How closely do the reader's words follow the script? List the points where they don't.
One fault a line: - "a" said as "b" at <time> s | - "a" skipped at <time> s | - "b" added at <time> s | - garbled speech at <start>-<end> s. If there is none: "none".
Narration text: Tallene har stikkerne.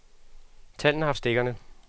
none